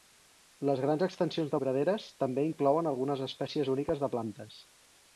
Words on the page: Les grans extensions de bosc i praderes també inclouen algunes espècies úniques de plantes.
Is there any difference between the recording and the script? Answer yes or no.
yes